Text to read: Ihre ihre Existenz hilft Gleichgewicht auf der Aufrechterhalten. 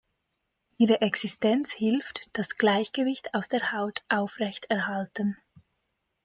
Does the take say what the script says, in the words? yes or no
no